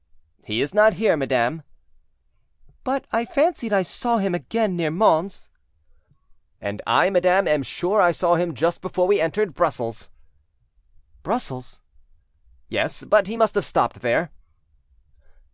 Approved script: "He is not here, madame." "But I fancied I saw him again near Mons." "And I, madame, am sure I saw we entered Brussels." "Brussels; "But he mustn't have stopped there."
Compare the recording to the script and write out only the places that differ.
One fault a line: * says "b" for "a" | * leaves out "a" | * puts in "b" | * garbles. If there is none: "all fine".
* puts in "him just before"
* puts in "Yes"
* says "must" for "mustn't"